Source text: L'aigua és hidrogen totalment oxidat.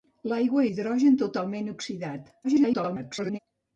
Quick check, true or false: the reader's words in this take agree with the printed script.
false